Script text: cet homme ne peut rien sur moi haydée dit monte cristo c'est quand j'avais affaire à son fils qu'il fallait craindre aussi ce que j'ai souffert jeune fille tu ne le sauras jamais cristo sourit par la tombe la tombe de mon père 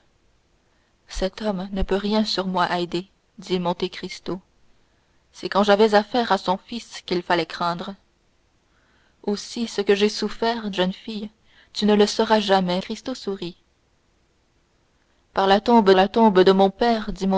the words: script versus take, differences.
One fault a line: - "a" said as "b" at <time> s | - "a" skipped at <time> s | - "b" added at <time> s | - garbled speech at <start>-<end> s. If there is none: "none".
none